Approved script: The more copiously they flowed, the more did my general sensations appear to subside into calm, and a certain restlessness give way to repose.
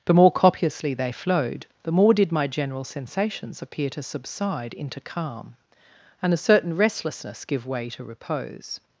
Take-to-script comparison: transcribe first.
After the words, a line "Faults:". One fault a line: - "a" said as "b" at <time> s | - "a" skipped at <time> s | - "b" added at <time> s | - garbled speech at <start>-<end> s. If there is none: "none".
The more copiously they flowed, the more did my general sensations appear to subside into calm, and a certain restlessness give way to repose.
Faults:
none